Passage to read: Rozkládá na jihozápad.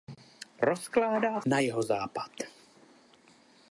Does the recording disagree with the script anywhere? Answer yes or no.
no